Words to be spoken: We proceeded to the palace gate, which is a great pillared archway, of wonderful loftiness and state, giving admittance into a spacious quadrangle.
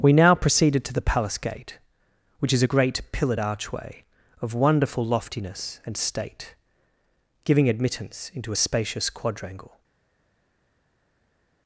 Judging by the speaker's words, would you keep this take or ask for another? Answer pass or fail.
fail